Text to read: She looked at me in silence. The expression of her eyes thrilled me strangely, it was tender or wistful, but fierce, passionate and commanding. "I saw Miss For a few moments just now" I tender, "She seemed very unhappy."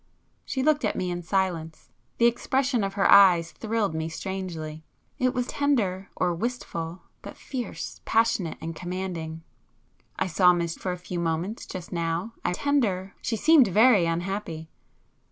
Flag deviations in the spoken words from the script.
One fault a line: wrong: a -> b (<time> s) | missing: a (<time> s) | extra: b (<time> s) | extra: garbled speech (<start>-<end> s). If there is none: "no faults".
no faults